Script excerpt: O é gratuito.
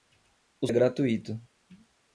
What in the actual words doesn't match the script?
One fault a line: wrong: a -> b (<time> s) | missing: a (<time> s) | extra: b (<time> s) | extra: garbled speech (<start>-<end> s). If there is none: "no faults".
no faults